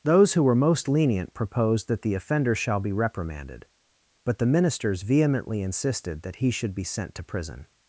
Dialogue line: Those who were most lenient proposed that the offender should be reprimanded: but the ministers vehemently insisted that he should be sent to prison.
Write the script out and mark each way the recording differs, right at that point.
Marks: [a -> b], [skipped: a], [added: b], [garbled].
Those who were most lenient proposed that the offender [should -> shall] be reprimanded: but the ministers vehemently insisted that he should be sent to prison.